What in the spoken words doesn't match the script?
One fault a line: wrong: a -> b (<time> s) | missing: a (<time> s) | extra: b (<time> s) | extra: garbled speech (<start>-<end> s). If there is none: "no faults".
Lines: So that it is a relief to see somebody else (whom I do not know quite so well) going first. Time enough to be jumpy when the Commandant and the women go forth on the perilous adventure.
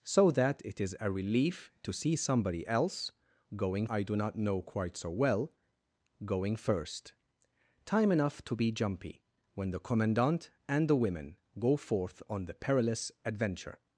wrong: whom -> going (3.6 s)